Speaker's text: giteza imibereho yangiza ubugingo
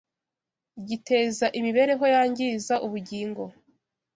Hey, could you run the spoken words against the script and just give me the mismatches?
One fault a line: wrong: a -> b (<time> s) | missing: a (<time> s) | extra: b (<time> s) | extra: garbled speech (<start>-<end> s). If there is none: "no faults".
no faults